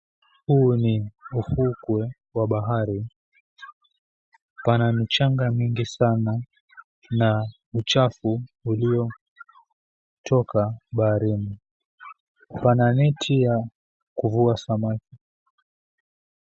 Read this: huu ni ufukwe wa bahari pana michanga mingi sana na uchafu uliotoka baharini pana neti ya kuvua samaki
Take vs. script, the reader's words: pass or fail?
pass